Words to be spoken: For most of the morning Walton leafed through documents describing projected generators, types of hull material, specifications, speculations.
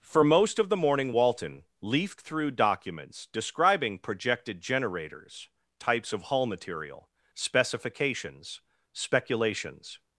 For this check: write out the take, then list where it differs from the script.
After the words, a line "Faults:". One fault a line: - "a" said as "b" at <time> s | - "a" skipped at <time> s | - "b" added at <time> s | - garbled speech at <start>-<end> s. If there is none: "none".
For most of the morning Walton leafed through documents describing projected generators, types of hull material, specifications, speculations.
Faults:
none